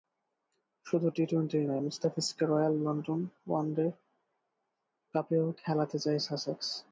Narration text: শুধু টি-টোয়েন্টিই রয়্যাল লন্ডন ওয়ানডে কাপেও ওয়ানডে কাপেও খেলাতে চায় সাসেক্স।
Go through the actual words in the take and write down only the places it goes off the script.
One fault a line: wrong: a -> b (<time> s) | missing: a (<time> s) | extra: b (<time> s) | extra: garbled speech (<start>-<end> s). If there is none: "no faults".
extra: নয় মুস্তাফিজকে (1.7 s)
missing: ওয়ানডে কাপেও (5.4 s)